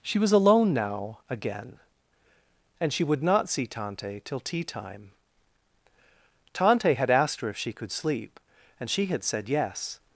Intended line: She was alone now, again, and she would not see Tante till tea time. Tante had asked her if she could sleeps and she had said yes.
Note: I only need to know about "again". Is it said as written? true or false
true